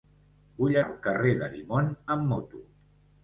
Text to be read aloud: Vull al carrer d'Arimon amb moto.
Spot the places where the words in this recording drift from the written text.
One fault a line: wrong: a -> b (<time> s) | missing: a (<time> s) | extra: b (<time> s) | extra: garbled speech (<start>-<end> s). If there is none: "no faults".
no faults